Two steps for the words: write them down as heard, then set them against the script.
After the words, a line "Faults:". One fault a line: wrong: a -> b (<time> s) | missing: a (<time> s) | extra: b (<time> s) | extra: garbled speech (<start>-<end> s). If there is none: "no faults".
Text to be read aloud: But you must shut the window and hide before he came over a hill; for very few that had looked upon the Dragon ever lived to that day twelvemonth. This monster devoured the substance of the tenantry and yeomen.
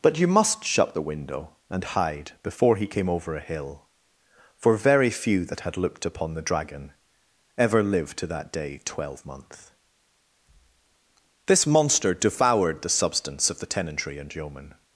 But you must shut the window and hide before he came over a hill; for very few that had looked upon the Dragon ever lived to that day twelvemonth. This monster devoured the substance of the tenantry and yeomen.
Faults:
no faults